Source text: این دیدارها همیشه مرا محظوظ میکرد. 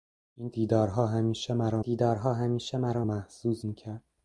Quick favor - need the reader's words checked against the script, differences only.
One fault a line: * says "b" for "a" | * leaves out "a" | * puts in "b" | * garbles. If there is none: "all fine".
* puts in "دیدارها همیشه مرا"